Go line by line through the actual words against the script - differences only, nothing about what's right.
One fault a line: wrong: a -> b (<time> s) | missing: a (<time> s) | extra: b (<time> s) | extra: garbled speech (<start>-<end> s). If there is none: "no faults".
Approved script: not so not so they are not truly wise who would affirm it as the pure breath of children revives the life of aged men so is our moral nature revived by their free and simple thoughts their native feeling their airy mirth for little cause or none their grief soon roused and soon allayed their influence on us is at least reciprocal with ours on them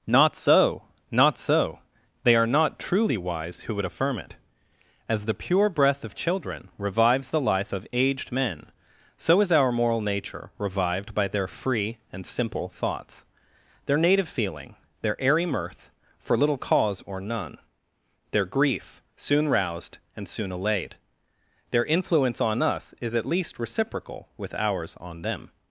no faults